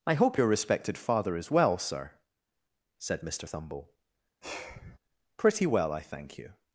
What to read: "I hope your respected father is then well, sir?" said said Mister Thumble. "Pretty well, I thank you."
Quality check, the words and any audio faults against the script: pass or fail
fail